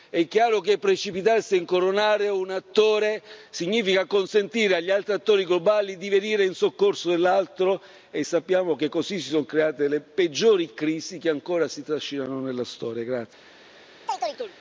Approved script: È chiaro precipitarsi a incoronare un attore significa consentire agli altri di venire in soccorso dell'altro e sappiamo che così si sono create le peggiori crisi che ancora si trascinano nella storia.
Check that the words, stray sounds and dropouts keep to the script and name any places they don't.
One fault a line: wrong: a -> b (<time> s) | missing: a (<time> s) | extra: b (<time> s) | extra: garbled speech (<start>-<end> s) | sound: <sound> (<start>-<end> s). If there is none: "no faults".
extra: che (0.6 s)
extra: attori globali (5.1 s)
sound: chirp (14.1-14.5 s)